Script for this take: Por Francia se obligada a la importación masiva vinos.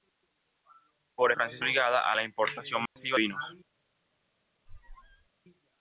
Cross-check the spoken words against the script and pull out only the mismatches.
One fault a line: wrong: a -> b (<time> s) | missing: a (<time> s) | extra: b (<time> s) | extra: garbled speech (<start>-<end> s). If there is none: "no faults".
no faults